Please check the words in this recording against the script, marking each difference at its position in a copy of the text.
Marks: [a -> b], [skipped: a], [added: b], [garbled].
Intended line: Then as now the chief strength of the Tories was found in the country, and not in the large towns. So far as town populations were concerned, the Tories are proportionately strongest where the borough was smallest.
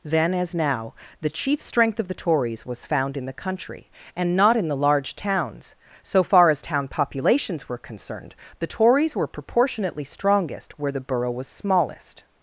Then as now the chief strength of the Tories was found in the country, and not in the large towns. So far as town populations were concerned, the Tories [are -> were] proportionately strongest where the borough was smallest.